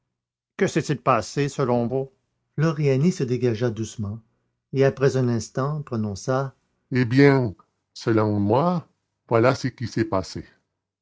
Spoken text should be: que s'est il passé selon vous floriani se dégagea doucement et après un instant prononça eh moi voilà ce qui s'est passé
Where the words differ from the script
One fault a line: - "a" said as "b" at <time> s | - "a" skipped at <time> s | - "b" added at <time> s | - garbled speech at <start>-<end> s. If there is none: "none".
- "bien selon" added at 7.0 s